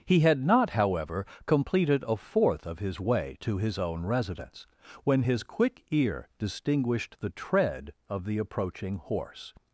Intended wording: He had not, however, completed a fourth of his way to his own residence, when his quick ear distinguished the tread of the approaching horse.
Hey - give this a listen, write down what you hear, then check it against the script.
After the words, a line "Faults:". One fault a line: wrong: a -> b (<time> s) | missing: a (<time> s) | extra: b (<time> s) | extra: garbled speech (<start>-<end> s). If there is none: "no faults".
He had not, however, completed a fourth of his way to his own residence, when his quick ear distinguished the tread of the approaching horse.
Faults:
no faults